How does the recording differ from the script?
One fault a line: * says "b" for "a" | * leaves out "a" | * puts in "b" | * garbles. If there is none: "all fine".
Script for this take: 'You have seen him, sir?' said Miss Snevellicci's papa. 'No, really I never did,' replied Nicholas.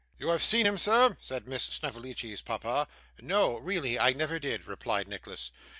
all fine